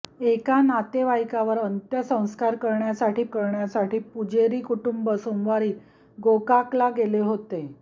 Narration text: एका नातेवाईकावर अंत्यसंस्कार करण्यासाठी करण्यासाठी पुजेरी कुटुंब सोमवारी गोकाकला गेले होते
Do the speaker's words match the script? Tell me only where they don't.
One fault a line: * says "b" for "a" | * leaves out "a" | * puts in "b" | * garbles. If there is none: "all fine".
all fine